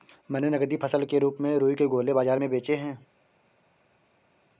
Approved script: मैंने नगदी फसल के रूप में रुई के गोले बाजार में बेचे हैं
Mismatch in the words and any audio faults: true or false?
false